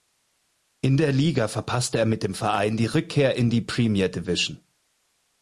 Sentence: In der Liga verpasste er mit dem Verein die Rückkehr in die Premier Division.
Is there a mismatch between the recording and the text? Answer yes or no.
no